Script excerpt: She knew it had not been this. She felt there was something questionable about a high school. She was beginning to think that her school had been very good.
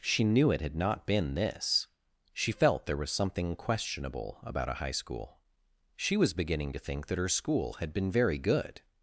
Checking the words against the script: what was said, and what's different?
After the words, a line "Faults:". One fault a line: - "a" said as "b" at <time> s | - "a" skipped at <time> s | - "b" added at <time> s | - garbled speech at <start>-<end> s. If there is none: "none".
She knew it had not been this. She felt there was something questionable about a high school. She was beginning to think that her school had been very good.
Faults:
none